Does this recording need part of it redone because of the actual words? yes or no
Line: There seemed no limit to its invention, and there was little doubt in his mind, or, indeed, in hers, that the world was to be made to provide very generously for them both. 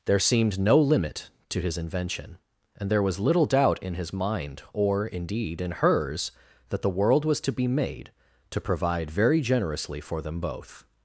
yes